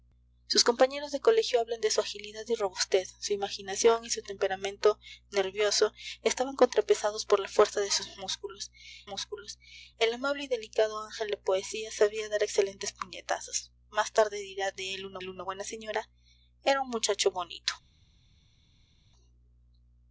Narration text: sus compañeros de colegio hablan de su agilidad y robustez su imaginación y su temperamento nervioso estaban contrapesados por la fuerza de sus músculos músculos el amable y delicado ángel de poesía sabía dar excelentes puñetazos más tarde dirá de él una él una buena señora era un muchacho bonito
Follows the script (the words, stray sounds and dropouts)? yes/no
yes